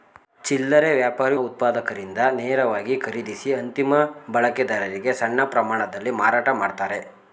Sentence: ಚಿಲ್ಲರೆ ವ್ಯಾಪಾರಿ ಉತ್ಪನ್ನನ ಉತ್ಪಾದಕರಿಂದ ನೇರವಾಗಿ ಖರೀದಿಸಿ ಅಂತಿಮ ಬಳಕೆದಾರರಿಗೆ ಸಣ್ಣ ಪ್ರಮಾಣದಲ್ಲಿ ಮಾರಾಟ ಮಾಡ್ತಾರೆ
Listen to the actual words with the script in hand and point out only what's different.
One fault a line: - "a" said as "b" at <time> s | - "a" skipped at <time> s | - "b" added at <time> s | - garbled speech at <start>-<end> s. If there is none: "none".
- "ಉತ್ಪನ್ನನ" skipped at 1.4 s